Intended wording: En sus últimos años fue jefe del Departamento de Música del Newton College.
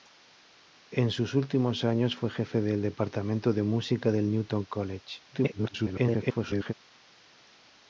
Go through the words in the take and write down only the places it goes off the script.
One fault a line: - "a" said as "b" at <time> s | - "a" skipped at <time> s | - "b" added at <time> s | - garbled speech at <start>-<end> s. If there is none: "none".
- garbled speech at 5.3-6.7 s